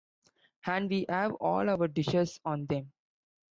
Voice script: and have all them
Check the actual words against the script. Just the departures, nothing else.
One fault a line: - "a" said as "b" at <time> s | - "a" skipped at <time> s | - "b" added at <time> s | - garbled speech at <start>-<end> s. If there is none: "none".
- "we" added at 0.9 s
- "our dishes on" added at 1.7 s